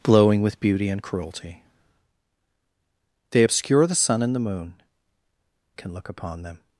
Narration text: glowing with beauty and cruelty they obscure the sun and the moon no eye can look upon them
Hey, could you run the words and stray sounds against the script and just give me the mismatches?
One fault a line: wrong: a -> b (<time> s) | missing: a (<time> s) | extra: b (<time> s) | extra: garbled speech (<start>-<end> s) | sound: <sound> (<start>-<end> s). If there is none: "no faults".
missing: no eye (4.8 s)